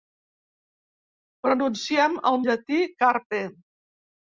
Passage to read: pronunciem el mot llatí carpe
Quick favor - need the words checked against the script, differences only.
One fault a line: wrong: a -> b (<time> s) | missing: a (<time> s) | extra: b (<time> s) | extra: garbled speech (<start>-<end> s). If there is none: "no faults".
missing: mot (2.4 s)